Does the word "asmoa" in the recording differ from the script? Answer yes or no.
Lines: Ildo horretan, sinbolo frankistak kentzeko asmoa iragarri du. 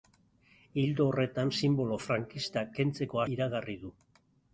yes